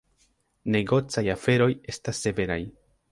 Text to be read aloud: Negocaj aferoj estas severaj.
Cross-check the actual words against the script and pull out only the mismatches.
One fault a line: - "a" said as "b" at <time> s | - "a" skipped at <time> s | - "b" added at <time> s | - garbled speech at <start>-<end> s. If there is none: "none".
none